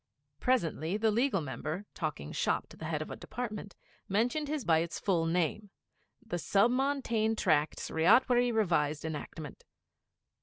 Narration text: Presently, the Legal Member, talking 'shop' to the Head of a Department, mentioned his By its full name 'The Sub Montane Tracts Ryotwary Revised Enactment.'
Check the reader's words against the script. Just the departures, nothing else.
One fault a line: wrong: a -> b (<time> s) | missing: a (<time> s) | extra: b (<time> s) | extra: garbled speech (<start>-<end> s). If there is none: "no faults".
no faults